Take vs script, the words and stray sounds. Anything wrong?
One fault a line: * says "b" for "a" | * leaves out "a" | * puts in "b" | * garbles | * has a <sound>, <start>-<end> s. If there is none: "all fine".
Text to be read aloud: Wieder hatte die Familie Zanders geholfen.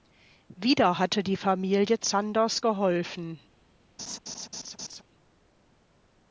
* has a laugh, 4.0-5.0 s